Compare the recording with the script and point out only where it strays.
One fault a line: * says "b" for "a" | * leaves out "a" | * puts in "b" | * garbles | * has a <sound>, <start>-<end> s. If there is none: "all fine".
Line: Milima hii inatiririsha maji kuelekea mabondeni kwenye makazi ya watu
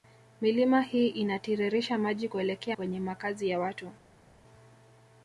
* leaves out "mabondeni"